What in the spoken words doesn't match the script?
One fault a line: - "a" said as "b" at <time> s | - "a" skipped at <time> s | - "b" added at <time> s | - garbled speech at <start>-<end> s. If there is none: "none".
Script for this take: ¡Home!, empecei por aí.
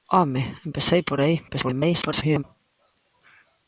- garbled speech at 1.5-2.4 s